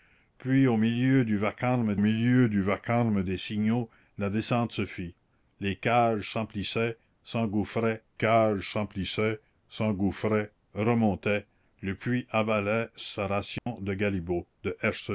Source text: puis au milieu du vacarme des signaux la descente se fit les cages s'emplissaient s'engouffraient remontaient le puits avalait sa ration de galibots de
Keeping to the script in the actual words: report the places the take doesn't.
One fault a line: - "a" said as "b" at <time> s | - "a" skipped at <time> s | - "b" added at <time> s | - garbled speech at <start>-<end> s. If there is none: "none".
- "milieu du vacarme" added at 2.0 s
- "cages s'emplissaient s'engouffraient" added at 8.1 s